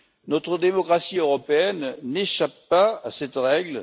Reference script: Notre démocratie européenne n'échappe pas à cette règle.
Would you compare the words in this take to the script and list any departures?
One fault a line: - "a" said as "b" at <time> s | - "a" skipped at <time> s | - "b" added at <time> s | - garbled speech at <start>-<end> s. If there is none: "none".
none